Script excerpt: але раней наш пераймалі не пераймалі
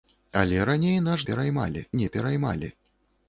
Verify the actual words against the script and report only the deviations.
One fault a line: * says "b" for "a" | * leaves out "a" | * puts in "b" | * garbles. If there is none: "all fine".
all fine